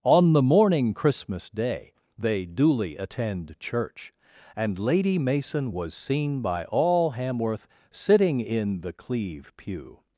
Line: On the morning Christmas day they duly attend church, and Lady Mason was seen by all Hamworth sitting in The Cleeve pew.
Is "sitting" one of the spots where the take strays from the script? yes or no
no